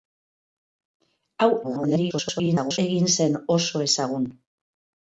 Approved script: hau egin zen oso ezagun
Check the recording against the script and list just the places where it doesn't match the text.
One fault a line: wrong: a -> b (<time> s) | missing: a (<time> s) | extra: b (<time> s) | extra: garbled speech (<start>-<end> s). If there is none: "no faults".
extra: garbled speech (1.6-2.8 s)